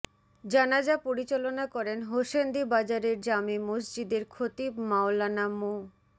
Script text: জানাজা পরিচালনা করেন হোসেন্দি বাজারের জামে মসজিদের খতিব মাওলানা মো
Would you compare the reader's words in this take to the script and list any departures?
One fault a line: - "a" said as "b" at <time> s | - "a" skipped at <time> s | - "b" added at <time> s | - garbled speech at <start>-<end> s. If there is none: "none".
none